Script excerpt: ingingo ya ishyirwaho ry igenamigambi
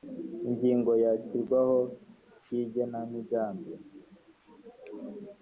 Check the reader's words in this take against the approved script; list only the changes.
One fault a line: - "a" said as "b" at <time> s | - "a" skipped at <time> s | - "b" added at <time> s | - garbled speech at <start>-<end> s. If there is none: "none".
none